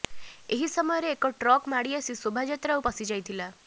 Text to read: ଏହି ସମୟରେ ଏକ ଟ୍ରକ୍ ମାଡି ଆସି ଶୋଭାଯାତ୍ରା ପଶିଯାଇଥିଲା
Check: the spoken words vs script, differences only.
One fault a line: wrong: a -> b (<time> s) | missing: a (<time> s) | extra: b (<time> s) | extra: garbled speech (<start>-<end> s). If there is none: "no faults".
no faults